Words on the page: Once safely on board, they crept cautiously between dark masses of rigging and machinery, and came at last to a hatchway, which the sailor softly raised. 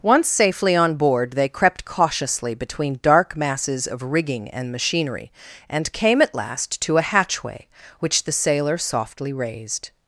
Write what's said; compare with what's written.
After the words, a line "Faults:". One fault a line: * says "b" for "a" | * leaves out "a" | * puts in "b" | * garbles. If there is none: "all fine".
Once safely on board, they crept cautiously between dark masses of rigging and machinery, and came at last to a hatchway, which the sailor softly raised.
Faults:
all fine